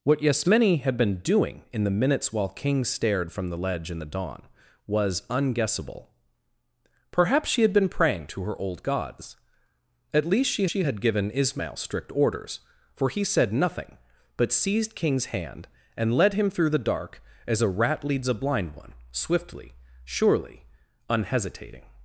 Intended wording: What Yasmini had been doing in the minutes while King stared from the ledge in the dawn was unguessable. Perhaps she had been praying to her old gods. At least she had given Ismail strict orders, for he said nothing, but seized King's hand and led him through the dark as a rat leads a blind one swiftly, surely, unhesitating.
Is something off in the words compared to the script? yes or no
yes